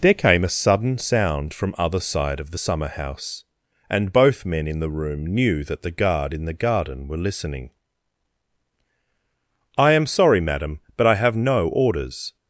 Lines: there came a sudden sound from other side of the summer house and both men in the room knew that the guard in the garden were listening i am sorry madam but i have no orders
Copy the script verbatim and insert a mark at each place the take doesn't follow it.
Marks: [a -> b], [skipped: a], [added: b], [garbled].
there came a sudden sound from other side of the summer house and both men in the room knew that the guard in the garden were listening i am sorry madam but i have no orders